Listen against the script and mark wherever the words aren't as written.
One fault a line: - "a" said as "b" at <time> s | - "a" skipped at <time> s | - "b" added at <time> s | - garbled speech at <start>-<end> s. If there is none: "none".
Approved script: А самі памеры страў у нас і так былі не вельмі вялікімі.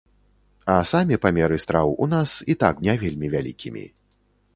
- "былі" skipped at 2.8 s